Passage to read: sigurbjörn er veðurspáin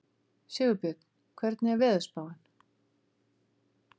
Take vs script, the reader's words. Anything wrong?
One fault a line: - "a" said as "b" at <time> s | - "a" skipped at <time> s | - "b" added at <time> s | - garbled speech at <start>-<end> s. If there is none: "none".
- "hvernig" added at 1.4 s